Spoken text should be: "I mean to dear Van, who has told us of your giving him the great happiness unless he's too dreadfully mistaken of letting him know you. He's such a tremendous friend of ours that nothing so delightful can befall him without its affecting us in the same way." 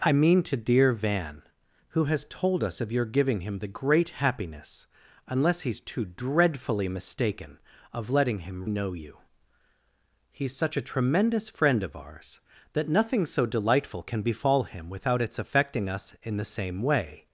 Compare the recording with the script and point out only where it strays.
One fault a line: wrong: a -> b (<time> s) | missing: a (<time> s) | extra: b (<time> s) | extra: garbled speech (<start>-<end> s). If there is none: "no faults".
no faults